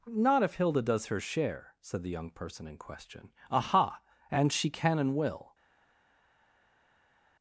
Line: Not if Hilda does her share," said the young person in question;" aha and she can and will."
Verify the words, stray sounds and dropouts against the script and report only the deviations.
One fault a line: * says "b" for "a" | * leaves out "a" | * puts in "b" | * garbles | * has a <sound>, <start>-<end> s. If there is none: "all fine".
all fine